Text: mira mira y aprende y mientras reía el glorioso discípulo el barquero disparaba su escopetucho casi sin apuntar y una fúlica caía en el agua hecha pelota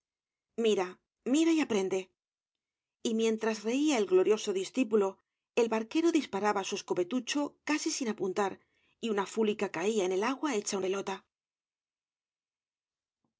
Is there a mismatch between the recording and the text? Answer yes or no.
no